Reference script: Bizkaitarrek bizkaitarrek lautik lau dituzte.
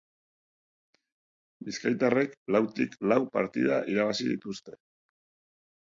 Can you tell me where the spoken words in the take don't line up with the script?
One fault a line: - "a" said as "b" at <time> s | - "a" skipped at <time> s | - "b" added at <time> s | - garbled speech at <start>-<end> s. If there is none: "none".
- "bizkaitarrek" skipped at 2.4 s
- "partida irabazi" added at 3.4 s